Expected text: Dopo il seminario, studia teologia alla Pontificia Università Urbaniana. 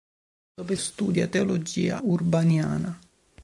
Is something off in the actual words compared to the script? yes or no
yes